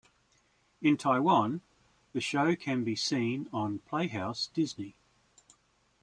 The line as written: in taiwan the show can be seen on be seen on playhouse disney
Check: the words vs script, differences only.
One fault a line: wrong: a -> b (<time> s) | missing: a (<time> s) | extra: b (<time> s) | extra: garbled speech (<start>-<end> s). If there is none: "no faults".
missing: be seen on (3.8 s)